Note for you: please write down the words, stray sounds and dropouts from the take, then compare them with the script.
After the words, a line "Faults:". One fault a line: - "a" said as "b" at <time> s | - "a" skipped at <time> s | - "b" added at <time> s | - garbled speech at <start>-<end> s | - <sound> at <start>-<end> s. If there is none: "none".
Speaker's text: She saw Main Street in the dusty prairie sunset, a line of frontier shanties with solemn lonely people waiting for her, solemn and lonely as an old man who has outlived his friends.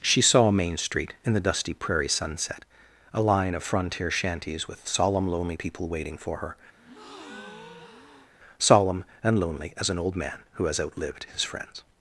She saw Main Street in the dusty prairie sunset, a line of frontier shanties with solemn lonely people waiting for her, solemn and lonely as an old man who has outlived his friends.
Faults:
- breath at 6.8-8.3 s